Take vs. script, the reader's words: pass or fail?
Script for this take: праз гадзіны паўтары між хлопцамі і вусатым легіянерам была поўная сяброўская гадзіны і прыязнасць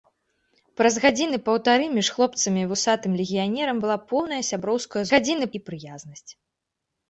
pass